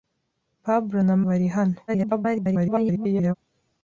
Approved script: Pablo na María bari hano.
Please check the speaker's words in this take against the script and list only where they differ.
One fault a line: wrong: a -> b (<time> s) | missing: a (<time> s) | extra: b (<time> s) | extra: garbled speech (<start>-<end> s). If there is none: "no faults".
missing: María (1.1 s)
extra: garbled speech (1.9-3.3 s)